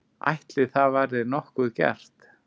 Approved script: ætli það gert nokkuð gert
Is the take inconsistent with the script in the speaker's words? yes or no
yes